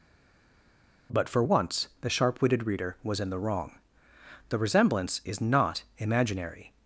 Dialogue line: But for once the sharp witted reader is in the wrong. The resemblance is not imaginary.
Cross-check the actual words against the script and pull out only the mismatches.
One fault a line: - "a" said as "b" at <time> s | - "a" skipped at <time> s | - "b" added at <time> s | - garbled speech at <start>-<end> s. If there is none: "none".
- "is" said as "was" at 3.0 s